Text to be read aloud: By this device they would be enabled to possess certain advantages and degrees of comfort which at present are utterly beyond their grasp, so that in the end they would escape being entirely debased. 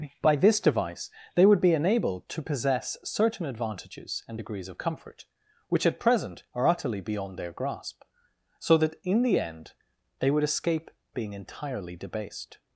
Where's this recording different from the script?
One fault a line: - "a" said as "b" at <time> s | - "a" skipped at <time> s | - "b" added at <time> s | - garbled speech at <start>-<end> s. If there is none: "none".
none